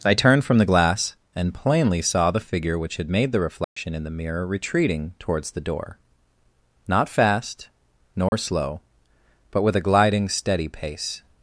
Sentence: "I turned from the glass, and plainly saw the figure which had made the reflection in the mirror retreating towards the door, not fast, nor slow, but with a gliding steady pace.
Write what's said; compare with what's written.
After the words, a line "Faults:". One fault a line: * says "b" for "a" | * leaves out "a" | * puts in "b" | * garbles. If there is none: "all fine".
"I turned from the glass, and plainly saw the figure which had made the reflection in the mirror retreating towards the door, not fast, nor slow, but with a gliding steady pace.
Faults:
all fine